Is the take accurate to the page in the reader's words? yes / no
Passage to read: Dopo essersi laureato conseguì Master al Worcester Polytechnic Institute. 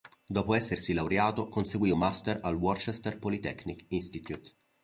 yes